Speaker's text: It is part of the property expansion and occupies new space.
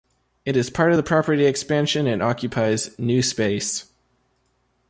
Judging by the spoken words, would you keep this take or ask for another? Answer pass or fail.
pass